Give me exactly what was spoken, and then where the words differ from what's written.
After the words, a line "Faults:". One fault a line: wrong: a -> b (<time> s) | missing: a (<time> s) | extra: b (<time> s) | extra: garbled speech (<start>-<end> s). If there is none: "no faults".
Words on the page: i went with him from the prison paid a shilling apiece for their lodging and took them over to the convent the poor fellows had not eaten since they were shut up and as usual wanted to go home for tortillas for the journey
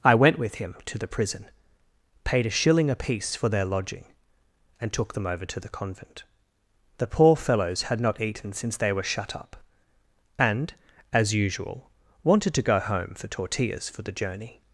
i went with him to the prison paid a shilling apiece for their lodging and took them over to the convent the poor fellows had not eaten since they were shut up and as usual wanted to go home for tortillas for the journey
Faults:
wrong: from -> to (0.8 s)